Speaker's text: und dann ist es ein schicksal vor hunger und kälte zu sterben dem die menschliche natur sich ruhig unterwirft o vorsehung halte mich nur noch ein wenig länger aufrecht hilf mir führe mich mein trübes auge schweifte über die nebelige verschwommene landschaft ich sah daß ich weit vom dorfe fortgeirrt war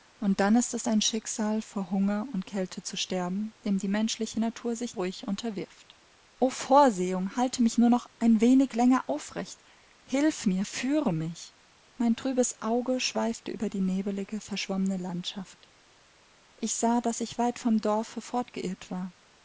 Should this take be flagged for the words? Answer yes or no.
no